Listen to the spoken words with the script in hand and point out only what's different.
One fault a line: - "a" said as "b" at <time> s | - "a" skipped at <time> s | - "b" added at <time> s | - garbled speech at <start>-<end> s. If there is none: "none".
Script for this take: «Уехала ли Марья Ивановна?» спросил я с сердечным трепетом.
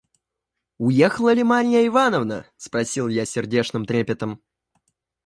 none